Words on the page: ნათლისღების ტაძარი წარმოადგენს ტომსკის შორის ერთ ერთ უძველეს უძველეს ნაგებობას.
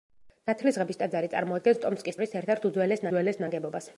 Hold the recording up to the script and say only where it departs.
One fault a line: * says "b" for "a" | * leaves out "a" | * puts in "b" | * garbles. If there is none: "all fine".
all fine